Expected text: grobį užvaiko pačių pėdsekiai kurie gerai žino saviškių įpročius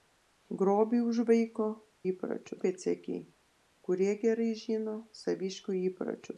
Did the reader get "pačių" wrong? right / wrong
wrong